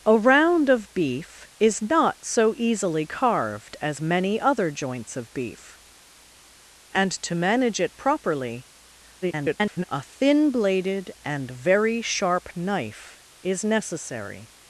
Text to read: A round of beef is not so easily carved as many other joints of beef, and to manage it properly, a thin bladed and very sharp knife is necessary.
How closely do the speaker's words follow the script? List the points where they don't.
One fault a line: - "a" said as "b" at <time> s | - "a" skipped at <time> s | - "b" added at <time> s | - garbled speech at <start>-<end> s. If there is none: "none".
- garbled speech at 9.2-9.8 s